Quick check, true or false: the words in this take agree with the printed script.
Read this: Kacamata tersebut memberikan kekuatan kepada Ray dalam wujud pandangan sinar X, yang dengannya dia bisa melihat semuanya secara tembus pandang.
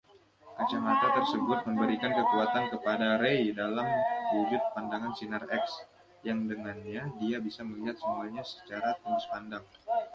true